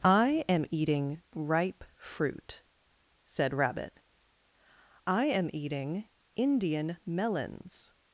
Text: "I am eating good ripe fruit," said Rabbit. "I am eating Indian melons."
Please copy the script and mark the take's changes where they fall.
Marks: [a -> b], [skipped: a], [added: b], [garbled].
"I am eating [skipped: good] ripe fruit," said Rabbit. "I am eating Indian melons."